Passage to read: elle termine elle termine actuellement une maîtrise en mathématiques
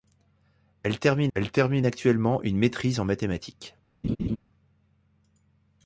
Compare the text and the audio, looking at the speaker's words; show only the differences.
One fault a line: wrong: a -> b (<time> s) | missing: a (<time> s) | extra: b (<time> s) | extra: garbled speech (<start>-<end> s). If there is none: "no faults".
no faults